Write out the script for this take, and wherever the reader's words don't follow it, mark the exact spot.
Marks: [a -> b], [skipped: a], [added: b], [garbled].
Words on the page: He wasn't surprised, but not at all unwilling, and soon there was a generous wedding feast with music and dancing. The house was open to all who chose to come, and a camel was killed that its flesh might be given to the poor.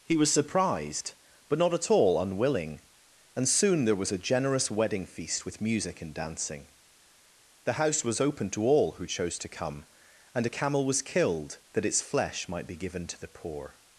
He [wasn't -> was] surprised, but not at all unwilling, and soon there was a generous wedding feast with music and dancing. The house was open to all who chose to come, and a camel was killed that its flesh might be given to the poor.